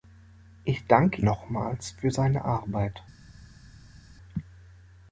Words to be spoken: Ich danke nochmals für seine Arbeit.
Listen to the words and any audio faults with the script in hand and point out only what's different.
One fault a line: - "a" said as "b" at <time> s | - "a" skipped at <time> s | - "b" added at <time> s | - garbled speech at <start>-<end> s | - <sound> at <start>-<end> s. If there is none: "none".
none